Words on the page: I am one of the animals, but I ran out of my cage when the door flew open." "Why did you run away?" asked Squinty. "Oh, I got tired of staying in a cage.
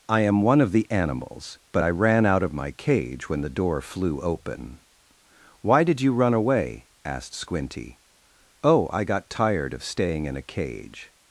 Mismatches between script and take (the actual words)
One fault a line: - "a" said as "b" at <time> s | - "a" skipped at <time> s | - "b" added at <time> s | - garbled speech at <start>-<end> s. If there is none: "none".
none